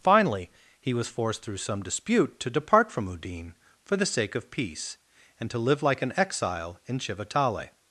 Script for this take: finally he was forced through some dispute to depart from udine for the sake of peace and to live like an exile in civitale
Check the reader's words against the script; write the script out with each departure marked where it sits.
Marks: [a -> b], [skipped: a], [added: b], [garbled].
finally he was forced through some dispute to depart from udine for the sake of peace and to live like an exile in civitale